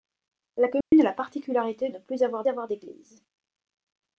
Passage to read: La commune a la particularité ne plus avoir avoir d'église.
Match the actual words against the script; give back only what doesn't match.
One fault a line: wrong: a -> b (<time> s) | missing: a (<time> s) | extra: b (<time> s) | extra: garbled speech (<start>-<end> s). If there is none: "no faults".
no faults